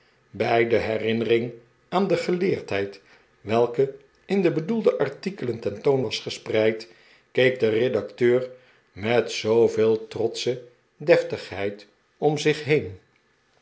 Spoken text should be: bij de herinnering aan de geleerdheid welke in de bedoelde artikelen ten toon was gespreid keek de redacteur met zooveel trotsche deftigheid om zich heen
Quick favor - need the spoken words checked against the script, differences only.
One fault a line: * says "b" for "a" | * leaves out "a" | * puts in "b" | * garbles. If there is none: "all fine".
all fine